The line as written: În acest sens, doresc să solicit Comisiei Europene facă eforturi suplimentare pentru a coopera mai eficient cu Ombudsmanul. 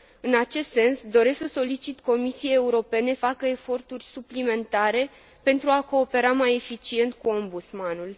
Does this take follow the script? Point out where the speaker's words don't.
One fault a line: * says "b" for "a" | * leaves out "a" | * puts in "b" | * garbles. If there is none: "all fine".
all fine